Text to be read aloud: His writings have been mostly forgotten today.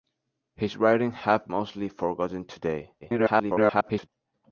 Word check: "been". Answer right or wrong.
wrong